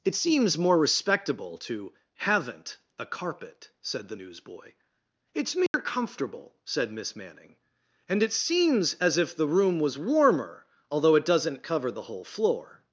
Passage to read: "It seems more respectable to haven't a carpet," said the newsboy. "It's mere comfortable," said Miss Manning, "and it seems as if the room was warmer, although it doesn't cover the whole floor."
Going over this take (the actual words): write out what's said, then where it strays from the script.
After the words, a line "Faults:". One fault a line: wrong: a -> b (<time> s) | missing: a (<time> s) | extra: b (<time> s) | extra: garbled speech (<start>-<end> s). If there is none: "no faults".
"It seems more respectable to haven't a carpet," said the newsboy. "It's mere comfortable," said Miss Manning, "and it seems as if the room was warmer, although it doesn't cover the whole floor."
Faults:
no faults